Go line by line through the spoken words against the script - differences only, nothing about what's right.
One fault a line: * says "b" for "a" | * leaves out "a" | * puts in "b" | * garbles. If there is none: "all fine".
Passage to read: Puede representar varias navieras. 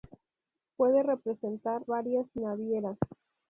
all fine